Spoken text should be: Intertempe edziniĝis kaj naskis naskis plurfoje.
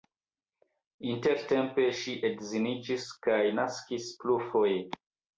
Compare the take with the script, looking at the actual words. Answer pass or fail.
fail